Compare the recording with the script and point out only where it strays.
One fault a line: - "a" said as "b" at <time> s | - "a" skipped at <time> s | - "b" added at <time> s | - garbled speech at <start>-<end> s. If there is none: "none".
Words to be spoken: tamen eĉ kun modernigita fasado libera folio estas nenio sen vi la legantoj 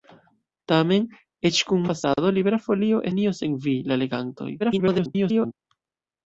- "modernigita" skipped at 1.8 s
- "estas" skipped at 3.0 s
- garbled speech at 4.6-5.5 s